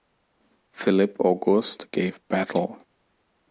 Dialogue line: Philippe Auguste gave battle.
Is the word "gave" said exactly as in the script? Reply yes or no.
yes